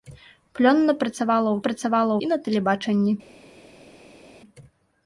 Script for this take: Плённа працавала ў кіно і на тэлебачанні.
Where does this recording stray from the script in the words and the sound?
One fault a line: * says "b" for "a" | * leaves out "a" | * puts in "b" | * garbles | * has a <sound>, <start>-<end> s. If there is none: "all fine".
* says "працавала" for "кіно"